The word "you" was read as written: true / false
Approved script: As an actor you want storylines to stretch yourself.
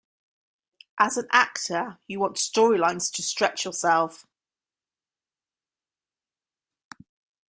true